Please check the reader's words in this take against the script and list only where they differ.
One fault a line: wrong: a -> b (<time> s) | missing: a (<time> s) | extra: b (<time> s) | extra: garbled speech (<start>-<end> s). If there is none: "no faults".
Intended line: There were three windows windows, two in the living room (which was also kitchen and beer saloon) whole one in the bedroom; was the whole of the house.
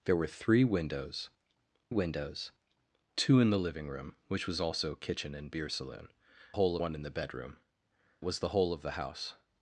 no faults